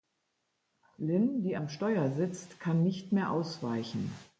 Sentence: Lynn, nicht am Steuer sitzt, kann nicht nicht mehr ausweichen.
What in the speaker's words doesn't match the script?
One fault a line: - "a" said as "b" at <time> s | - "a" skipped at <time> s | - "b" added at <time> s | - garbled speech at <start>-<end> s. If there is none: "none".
- "nicht" said as "die" at 1.4 s
- "nicht" skipped at 3.1 s